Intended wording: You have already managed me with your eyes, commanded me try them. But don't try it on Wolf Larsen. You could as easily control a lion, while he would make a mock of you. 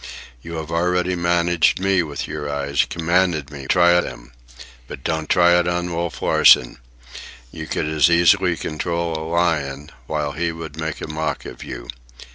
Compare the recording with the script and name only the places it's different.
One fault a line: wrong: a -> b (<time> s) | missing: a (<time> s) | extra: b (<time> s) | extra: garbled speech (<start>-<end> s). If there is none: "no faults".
no faults